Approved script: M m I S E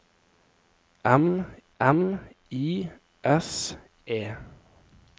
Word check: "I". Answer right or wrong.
right